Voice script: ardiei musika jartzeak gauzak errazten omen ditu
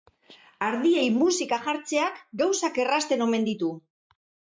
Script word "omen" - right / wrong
right